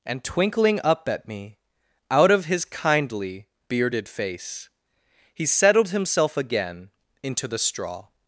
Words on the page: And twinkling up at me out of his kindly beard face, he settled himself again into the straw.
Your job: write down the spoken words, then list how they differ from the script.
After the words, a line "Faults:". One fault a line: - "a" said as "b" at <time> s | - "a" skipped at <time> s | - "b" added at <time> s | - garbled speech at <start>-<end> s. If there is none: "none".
And twinkling up at me out of his kindly bearded face, he settled himself again into the straw.
Faults:
- "beard" said as "bearded" at 3.7 s